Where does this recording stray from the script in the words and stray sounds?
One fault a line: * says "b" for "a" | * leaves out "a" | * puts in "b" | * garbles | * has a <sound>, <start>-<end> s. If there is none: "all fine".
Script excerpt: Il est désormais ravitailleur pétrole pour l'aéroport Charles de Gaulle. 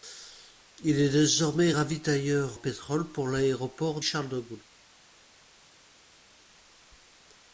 all fine